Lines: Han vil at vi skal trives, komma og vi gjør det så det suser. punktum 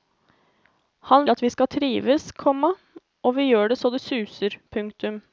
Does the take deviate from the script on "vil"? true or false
true